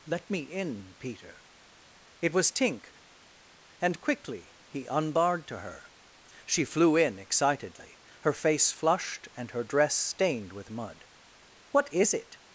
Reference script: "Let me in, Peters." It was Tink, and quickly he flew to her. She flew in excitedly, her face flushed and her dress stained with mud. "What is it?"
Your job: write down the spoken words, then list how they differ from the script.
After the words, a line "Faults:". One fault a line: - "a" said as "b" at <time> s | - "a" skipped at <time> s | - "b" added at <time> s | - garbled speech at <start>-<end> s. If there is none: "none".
"Let me in, Peter." It was Tink, and quickly he unbarred to her. She flew in excitedly, her face flushed and her dress stained with mud. "What is it?"
Faults:
- "Peters" said as "Peter" at 1.0 s
- "flew" said as "unbarred" at 4.9 s